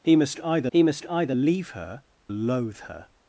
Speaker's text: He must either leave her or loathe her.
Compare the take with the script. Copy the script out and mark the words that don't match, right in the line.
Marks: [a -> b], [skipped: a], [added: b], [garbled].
He must either [added: he must either] leave her [skipped: or] loathe her.